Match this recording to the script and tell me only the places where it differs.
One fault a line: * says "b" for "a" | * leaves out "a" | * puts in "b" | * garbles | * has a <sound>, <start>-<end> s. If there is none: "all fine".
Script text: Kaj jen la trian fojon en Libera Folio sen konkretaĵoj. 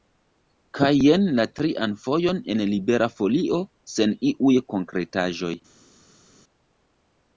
* puts in "iuj"